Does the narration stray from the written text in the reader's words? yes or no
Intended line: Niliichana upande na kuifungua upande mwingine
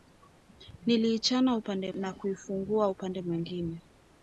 no